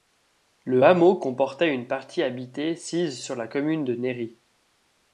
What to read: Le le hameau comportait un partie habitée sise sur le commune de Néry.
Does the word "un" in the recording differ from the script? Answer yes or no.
yes